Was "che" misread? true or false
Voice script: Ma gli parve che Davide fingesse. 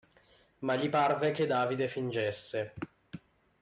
false